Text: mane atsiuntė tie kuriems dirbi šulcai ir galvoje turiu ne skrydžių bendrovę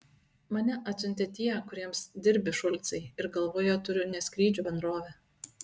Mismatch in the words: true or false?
false